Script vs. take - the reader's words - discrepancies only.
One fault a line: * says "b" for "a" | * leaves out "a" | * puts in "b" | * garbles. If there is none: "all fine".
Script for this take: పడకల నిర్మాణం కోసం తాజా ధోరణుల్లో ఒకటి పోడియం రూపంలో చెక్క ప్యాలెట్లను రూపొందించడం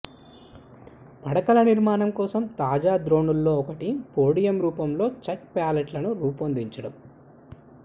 all fine